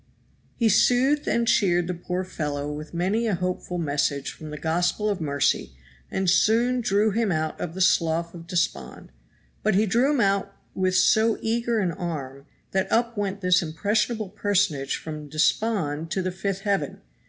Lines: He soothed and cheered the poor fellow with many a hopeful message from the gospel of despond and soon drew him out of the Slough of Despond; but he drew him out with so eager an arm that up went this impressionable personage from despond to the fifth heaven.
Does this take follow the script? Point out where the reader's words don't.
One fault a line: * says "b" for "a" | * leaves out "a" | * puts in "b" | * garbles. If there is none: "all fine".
* says "mercy" for "despond"